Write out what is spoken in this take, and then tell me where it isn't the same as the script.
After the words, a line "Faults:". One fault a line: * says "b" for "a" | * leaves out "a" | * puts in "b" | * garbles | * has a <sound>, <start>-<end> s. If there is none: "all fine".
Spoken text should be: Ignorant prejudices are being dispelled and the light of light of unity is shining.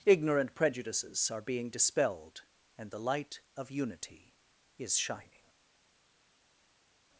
Ignorant prejudices are being dispelled and the light of unity is shining.
Faults:
* leaves out "light of"